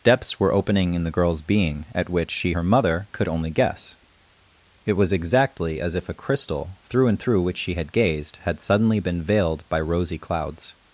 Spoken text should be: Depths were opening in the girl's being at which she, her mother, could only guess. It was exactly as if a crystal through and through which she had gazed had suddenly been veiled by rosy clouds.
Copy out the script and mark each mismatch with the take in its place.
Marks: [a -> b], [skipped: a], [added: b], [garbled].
Depths were opening in the girl's being at which she, her mother, could only guess. It was exactly as if a crystal through and through which she had gazed had suddenly been veiled by rosy clouds.